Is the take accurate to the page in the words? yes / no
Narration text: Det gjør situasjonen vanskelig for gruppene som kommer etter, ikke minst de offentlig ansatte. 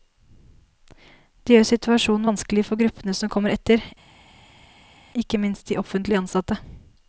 yes